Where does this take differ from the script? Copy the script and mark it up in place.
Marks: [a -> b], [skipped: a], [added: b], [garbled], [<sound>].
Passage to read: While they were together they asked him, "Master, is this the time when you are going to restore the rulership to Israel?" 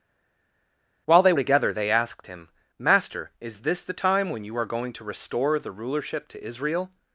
While they [skipped: were] together they asked him, "Master, is this the time when you are going to restore the rulership to Israel?"